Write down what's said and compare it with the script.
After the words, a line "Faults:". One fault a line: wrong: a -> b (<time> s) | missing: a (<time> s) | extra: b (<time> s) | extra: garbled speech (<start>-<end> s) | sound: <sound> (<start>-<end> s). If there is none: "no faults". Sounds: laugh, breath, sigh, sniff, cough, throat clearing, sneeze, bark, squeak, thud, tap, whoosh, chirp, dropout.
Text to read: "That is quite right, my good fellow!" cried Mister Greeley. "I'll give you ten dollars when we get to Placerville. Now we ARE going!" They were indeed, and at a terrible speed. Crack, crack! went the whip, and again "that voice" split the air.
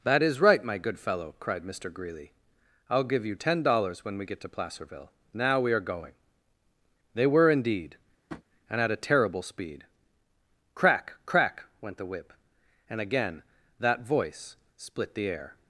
"That is right, my good fellow!" cried Mister Greeley. "I'll give you ten dollars when we get to Placerville. Now we ARE going!" They were indeed, and at a terrible speed. Crack, crack! went the whip, and again "that voice" split the air.
Faults:
missing: quite (0.4 s)
sound: tap (8.3-8.4 s)